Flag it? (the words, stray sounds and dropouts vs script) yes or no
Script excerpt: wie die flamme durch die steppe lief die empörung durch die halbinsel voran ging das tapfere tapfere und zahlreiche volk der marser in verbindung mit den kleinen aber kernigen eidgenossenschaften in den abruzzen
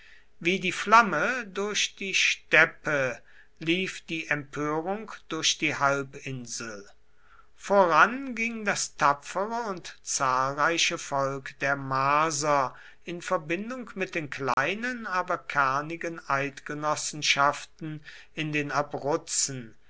yes